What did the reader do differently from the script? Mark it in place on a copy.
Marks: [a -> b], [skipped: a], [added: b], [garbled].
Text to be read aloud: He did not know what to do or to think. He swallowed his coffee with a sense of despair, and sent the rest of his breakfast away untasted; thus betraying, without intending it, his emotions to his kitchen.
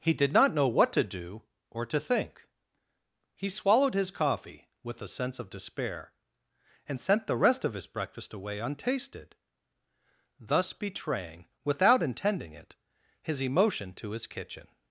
He did not know what to do or to think. He swallowed his coffee with a sense of despair, and sent the rest of his breakfast away untasted; thus betraying, without intending it, his [emotions -> emotion] to his kitchen.